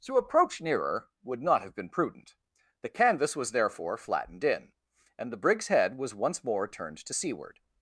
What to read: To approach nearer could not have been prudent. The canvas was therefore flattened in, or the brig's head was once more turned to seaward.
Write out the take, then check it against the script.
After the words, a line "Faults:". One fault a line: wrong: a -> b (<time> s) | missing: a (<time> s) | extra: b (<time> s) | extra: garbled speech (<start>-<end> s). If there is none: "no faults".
To approach nearer would not have been prudent. The canvas was therefore flattened in, and the brig's head was once more turned to seaward.
Faults:
wrong: could -> would (1.2 s)
wrong: or -> and (5.2 s)